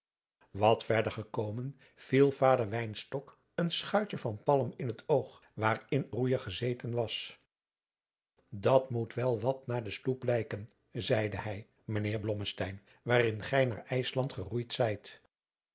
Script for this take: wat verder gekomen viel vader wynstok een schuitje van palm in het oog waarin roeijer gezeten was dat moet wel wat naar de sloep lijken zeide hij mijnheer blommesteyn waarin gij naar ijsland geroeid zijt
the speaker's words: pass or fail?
pass